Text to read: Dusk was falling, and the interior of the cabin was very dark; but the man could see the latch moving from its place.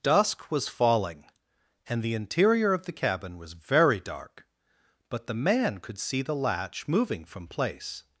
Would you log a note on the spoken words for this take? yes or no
yes